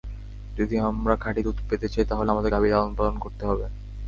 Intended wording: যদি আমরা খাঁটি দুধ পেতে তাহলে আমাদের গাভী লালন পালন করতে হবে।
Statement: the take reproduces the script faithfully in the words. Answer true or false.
false